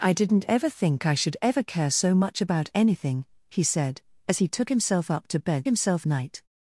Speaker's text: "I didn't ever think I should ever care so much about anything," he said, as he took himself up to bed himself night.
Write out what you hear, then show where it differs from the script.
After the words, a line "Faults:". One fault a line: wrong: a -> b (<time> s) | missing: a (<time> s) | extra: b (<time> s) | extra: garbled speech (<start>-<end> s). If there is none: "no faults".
"I didn't ever think I should ever care so much about anything," he said, as he took himself up to bed himself night.
Faults:
no faults